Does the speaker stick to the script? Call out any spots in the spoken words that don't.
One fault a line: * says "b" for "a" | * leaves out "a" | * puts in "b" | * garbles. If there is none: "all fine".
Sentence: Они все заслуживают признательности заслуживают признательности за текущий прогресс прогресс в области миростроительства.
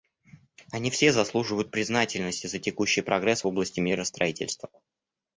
* leaves out "заслуживают признательности"
* leaves out "прогресс"